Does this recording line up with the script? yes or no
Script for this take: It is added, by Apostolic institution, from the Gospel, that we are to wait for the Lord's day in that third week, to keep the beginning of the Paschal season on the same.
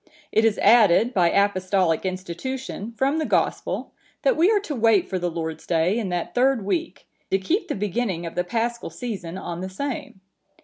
yes